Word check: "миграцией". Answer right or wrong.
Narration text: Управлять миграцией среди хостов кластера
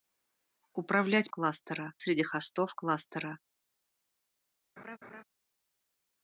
wrong